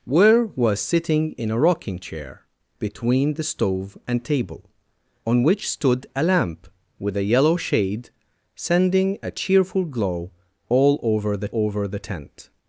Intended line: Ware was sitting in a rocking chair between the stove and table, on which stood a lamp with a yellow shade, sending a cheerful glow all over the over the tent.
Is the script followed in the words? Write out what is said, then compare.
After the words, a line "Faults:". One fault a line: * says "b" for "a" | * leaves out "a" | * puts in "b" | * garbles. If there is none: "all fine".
Ware was sitting in a rocking chair between the stove and table, on which stood a lamp with a yellow shade, sending a cheerful glow all over the over the tent.
Faults:
all fine